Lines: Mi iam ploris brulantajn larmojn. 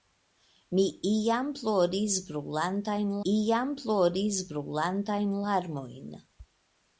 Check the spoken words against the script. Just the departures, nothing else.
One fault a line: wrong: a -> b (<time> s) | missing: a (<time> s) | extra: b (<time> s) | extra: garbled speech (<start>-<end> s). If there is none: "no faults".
extra: iam ploris brulantajn (3.3 s)